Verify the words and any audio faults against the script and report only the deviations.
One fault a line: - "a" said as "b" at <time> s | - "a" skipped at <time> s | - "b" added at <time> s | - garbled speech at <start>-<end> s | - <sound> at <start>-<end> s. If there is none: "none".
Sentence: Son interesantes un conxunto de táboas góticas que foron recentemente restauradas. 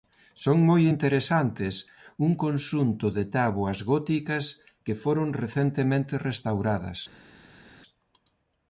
- "moi" added at 0.7 s